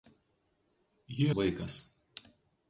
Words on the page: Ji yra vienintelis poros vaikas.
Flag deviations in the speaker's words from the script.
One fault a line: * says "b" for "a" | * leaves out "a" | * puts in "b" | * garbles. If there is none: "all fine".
* leaves out "yra vienintelis poros"